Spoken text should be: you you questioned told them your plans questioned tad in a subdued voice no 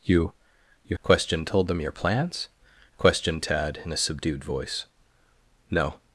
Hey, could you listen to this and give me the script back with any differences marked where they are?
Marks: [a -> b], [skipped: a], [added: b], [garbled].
you you questioned told them your plans questioned tad in a subdued voice no